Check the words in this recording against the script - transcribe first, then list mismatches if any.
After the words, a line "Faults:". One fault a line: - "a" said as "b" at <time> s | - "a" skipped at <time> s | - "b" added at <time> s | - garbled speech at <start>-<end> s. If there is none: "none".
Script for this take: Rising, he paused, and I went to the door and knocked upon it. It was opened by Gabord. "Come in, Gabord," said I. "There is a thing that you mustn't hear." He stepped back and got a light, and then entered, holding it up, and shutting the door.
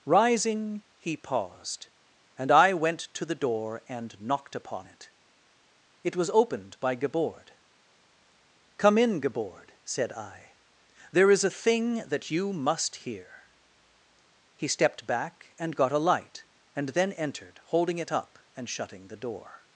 Rising, he paused, and I went to the door and knocked upon it. It was opened by Gabord. "Come in, Gabord," said I. "There is a thing that you must hear." He stepped back and got a light, and then entered, holding it up, and shutting the door.
Faults:
- "mustn't" said as "must" at 12.5 s